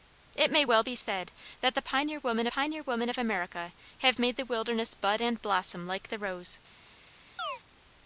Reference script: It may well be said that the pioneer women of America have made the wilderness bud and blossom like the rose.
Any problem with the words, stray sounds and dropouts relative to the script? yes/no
yes